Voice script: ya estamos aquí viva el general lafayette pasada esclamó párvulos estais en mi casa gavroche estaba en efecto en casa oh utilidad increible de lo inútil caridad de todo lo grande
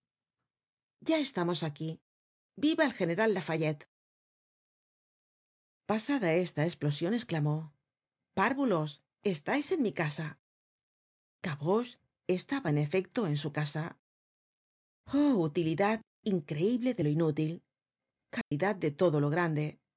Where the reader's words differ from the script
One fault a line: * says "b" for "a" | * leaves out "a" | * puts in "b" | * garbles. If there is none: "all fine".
* puts in "esta esplosion"
* puts in "su"